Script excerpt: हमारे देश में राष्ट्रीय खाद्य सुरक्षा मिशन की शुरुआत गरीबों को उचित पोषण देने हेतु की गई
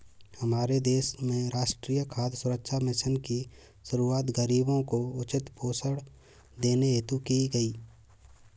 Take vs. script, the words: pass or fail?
pass